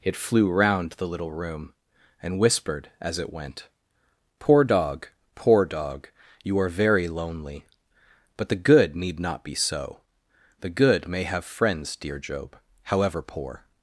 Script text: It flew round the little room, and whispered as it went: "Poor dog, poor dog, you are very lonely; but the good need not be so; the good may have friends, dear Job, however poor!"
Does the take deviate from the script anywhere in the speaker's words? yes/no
no